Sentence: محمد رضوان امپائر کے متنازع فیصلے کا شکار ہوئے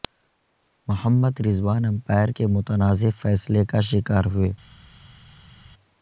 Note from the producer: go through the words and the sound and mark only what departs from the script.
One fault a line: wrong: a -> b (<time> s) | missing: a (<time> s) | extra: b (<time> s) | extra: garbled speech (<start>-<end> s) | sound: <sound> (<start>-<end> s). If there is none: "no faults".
no faults